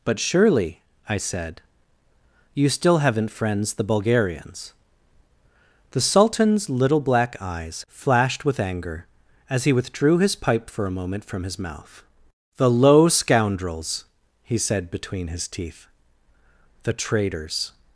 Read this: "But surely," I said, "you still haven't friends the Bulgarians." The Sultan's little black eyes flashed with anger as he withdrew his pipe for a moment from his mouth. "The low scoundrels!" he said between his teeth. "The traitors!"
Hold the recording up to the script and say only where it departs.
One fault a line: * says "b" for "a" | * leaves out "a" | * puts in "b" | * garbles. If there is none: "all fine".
all fine